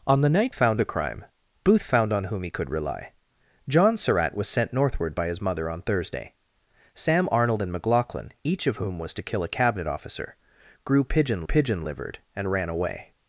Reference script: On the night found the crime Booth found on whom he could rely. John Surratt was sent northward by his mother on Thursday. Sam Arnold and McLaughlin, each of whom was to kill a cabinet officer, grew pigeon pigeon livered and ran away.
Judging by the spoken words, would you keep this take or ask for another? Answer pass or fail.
pass